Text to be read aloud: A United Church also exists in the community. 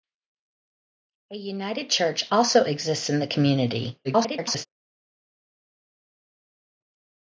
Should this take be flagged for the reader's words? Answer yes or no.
yes